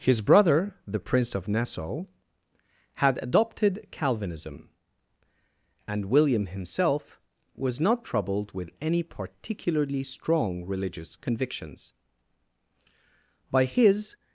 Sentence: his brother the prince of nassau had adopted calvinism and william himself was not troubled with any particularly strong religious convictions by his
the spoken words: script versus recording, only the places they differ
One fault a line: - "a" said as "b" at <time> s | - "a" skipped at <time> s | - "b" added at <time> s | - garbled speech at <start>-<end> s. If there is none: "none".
none